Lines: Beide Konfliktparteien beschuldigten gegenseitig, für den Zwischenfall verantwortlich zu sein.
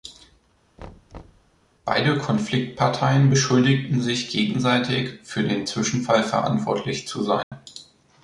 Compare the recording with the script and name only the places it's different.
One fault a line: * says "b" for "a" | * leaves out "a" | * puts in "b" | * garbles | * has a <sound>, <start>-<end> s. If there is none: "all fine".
* has a thud, 0.8-1.5 s
* puts in "sich"
* has a dropout, 7.4-7.5 s